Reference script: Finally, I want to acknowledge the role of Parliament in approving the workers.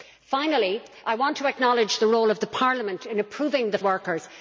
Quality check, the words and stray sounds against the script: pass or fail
pass